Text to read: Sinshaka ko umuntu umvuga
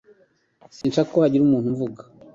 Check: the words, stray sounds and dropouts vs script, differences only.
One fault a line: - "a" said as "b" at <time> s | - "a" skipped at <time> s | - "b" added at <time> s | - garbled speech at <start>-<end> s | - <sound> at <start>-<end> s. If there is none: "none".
- dropout at 0.8-0.8 s
- "hagira" added at 1.2 s